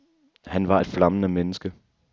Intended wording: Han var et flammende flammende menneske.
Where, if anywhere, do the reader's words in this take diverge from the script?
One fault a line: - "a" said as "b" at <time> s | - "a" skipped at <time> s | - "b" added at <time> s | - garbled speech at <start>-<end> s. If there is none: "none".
- "flammende" skipped at 1.3 s